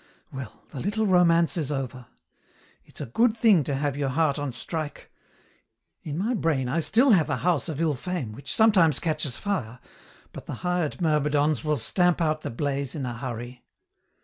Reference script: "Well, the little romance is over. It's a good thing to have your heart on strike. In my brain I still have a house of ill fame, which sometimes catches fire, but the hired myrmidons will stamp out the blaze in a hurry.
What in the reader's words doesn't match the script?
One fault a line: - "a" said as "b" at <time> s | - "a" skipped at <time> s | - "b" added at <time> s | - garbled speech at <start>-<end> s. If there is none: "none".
none